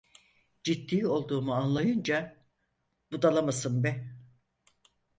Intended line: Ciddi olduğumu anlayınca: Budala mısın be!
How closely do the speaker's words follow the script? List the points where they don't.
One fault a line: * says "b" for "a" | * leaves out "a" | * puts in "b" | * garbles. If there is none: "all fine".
all fine